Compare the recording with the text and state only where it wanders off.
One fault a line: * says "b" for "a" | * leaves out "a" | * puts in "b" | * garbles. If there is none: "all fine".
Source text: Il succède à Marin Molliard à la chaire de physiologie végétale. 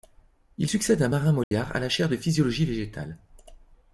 all fine